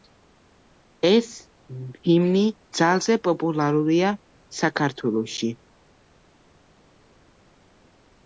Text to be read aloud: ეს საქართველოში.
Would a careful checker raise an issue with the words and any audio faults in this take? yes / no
yes